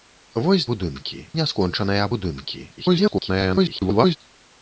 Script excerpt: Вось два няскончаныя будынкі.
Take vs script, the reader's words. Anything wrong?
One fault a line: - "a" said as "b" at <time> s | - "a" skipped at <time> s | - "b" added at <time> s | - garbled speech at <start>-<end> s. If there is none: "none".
- "два" said as "будынкі" at 0.7 s
- garbled speech at 2.8-4.2 s